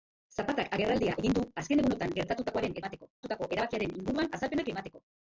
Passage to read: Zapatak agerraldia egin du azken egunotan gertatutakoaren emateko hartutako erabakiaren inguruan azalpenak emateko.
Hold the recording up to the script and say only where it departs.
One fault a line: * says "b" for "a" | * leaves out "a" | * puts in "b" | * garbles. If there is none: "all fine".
all fine